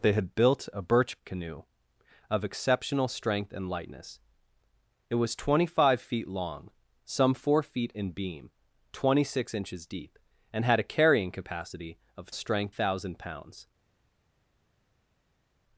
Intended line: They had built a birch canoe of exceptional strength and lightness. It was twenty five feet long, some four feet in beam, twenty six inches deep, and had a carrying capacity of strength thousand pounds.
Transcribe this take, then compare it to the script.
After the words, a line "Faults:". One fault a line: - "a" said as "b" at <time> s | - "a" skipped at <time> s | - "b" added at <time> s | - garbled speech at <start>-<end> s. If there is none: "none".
They had built a birch canoe of exceptional strength and lightness. It was twenty five feet long, some four feet in beam, twenty six inches deep, and had a carrying capacity of strength thousand pounds.
Faults:
none